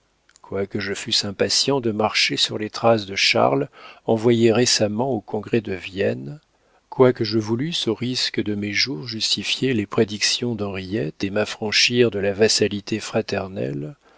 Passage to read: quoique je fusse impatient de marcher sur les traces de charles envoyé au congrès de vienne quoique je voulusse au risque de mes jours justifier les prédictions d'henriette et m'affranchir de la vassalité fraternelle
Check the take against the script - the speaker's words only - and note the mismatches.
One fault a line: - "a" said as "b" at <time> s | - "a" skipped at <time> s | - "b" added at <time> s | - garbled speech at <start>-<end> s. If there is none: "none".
- "récemment" added at 4.5 s